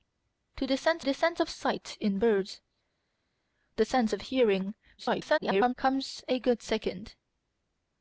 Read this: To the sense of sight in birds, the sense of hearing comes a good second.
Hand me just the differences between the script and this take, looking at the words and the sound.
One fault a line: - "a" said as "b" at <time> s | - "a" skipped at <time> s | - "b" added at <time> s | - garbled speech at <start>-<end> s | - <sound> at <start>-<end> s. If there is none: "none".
- "the sense" added at 1.0 s
- garbled speech at 5.0-5.7 s